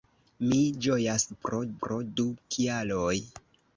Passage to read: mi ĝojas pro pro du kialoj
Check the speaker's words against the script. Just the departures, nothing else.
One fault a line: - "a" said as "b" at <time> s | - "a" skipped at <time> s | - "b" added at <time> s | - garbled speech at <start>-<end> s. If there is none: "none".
none